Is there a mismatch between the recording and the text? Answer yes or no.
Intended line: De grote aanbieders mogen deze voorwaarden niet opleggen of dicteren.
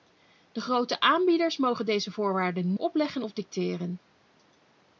yes